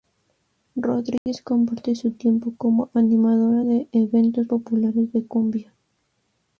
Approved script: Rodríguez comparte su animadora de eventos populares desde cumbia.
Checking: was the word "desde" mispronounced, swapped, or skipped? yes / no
yes